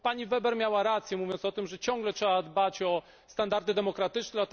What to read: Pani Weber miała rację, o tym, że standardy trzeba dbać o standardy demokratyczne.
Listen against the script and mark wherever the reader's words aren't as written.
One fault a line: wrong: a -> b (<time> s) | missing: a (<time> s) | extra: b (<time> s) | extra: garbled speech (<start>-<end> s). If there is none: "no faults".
extra: mówiąc (1.2 s)
wrong: standardy -> ciągle (1.8 s)